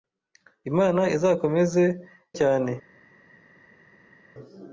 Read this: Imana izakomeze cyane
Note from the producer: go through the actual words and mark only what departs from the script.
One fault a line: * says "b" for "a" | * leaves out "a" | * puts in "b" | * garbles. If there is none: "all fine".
all fine